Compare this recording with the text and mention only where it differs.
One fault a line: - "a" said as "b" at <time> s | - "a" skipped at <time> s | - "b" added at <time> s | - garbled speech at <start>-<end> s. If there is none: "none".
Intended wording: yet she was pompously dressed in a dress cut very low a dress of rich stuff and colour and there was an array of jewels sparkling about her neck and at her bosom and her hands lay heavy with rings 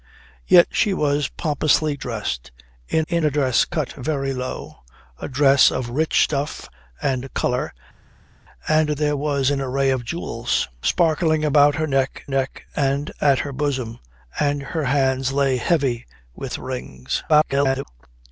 - "in" added at 3.1 s
- "neck" added at 12.3 s
- garbled speech at 17.3-17.9 s